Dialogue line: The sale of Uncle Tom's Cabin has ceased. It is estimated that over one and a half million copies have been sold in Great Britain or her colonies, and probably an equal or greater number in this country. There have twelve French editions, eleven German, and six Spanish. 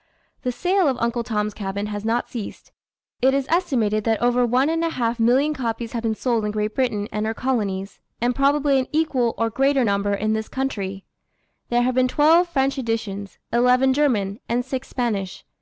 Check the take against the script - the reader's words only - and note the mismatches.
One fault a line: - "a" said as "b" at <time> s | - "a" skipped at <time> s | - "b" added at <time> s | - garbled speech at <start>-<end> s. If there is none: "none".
- "not" added at 2.0 s
- "or" said as "and" at 7.1 s
- "been" added at 11.9 s